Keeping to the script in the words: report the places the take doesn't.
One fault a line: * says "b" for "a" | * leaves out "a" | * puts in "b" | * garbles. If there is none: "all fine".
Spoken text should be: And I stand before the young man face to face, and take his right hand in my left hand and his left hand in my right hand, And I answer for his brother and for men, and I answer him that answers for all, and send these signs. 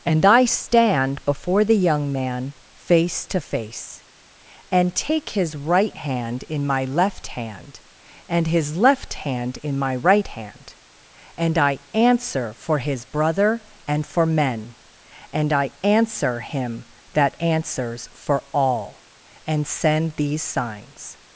all fine